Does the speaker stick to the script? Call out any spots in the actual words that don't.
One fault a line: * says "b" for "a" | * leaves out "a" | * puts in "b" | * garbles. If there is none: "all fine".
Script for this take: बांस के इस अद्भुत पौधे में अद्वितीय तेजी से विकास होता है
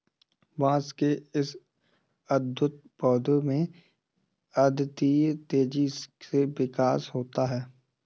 all fine